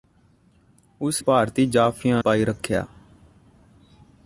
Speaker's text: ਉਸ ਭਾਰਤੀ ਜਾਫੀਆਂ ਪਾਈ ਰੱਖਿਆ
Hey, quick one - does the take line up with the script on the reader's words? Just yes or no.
yes